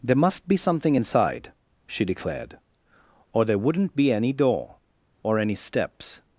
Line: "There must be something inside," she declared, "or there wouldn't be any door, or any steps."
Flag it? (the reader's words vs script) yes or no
no